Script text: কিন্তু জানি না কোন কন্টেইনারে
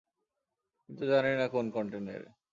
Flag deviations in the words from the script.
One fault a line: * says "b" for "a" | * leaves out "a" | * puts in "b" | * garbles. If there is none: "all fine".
all fine